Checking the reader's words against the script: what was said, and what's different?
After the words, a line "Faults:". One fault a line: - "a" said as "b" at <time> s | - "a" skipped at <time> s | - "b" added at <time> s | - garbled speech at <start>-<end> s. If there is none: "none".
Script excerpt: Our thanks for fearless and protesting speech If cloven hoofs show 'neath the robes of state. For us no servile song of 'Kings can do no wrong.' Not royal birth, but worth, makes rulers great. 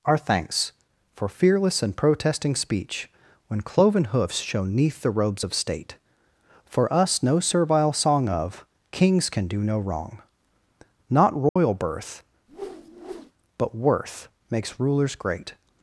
Our thanks for fearless and protesting speech When cloven hoofs show 'neath the robes of state. For us no servile song of 'Kings can do no wrong.' Not royal birth, but worth, makes rulers great.
Faults:
- "If" said as "When" at 3.5 s